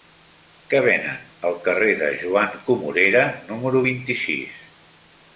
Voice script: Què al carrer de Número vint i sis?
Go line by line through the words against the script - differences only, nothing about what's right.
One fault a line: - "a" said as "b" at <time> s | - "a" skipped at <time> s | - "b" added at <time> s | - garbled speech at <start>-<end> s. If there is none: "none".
- "venen" added at 0.8 s
- "Joan Comorera" added at 2.2 s